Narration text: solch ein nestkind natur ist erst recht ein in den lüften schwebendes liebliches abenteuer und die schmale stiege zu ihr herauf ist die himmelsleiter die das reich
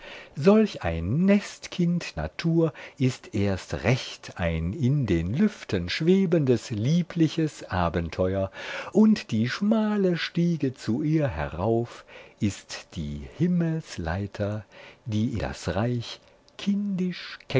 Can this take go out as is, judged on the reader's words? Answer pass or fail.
pass